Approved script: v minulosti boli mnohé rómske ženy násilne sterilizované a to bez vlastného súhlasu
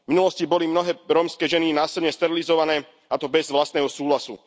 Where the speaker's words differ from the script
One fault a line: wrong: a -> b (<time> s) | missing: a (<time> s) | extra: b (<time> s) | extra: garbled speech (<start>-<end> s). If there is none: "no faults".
no faults